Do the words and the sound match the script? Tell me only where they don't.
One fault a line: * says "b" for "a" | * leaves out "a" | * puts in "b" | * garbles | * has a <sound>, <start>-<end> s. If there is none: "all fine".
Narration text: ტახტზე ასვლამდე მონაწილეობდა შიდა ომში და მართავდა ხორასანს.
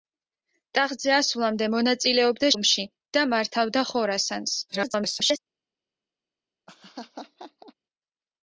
* leaves out "შიდა"
* garbles
* has a laugh, 6.7-7.7 s